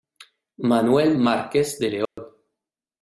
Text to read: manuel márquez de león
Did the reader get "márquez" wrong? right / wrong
right